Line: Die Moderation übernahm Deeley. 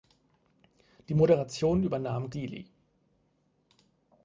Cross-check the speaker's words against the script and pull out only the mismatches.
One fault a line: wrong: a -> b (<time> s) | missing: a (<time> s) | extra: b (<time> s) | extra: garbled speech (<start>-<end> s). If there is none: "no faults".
no faults